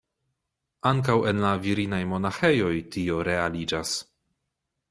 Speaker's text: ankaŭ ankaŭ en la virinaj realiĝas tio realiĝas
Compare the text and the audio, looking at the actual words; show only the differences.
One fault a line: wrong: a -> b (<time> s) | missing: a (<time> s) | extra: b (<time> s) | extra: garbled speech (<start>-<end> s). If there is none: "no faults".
missing: ankaŭ (1.2 s)
wrong: realiĝas -> monaĥejoj (2.1 s)